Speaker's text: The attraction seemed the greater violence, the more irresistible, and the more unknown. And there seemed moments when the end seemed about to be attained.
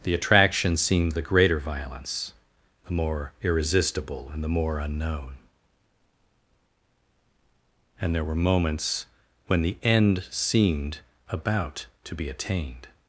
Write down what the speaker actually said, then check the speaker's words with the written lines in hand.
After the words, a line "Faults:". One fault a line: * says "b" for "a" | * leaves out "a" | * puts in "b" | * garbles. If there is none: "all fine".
The attraction seemed the greater violence, the more irresistible, and the more unknown. And there were moments when the end seemed about to be attained.
Faults:
* says "were" for "seemed"